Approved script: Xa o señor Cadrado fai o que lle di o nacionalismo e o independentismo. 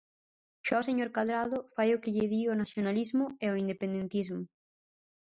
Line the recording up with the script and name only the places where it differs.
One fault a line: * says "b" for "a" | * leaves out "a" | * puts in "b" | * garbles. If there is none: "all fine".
all fine